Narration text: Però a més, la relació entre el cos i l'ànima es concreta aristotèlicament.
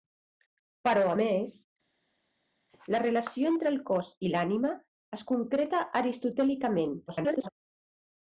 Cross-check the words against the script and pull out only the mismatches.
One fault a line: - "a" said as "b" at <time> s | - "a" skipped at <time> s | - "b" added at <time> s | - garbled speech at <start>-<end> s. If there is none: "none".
- garbled speech at 7.1-7.5 s